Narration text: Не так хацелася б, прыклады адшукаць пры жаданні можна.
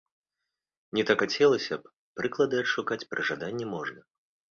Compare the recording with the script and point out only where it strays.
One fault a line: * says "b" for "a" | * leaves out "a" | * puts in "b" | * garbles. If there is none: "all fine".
all fine